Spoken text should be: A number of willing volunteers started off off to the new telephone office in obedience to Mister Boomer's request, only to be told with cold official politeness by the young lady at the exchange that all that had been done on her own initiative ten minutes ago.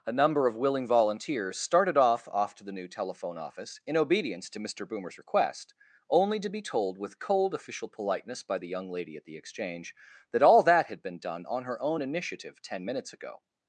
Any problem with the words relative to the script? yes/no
no